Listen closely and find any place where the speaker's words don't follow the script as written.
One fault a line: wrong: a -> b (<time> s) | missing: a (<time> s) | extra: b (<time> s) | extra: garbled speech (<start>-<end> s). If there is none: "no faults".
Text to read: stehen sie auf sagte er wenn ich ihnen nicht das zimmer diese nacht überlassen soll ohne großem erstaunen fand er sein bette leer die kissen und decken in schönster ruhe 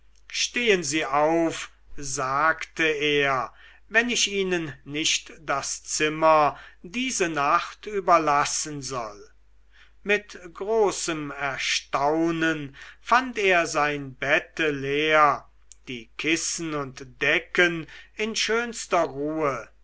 wrong: ohne -> mit (10.0 s)